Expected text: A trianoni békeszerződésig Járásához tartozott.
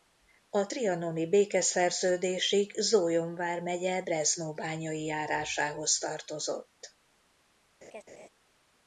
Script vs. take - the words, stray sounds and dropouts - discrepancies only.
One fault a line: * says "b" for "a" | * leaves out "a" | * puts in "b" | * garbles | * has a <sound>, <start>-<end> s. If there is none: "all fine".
* puts in "Zólyom vármegye Breznóbányai"
* has a laugh, 7.8-8.3 s